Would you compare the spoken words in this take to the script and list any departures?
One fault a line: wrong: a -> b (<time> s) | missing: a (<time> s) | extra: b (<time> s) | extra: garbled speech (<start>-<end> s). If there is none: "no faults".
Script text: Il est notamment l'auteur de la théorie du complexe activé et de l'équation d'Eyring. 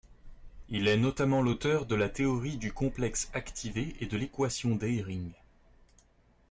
no faults